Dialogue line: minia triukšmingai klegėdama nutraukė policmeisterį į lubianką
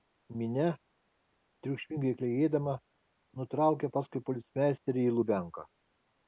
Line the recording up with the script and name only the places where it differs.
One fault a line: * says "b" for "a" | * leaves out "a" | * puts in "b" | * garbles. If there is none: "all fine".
* puts in "paskui"